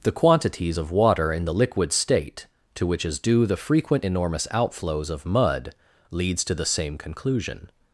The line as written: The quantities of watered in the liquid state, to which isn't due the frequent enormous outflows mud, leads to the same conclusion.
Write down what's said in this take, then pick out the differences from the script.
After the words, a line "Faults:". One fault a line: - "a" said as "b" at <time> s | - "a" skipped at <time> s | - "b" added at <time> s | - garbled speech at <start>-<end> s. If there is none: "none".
The quantities of water in the liquid state, to which is due the frequent enormous outflows of mud, leads to the same conclusion.
Faults:
- "watered" said as "water" at 0.9 s
- "isn't" said as "is" at 3.0 s
- "of" added at 5.1 s